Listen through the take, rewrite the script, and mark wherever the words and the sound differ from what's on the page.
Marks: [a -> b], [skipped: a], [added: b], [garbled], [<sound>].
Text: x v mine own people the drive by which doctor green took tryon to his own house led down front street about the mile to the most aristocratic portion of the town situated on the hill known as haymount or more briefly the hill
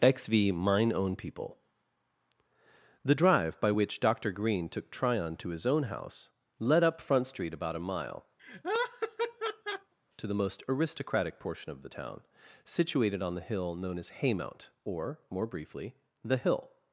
x v mine own people the drive by which doctor green took tryon to his own house led [down -> up] front street about [the -> a] mile [laugh] to the most aristocratic portion of the town situated on the hill known as haymount or more briefly the hill